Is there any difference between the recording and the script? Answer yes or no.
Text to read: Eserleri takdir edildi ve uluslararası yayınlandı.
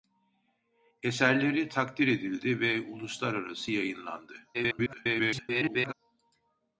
yes